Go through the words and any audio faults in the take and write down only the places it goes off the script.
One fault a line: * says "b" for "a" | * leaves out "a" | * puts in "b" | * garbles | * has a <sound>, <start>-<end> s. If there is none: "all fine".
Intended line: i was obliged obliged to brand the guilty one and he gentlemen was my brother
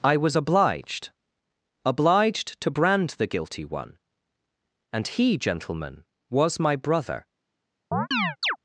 * has a chirp, 7.9-8.6 s